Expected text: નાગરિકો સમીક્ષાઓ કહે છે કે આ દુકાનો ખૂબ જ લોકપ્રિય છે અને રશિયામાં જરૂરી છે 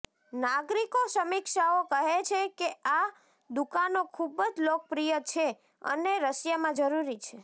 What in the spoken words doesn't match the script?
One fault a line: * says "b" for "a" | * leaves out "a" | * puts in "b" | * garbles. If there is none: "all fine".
all fine